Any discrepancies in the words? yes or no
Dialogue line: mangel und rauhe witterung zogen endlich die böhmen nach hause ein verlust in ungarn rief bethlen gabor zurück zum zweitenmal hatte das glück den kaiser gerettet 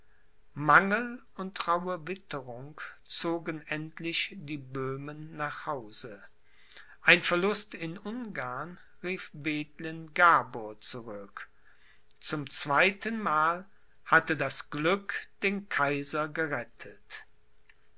no